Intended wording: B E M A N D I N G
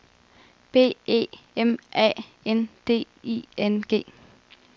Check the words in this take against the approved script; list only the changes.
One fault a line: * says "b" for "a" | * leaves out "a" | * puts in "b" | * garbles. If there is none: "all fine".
all fine